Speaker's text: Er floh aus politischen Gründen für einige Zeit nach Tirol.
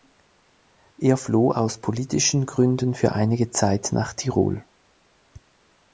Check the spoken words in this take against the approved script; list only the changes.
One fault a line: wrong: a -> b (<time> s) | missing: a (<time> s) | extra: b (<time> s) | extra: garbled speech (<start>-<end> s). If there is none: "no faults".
no faults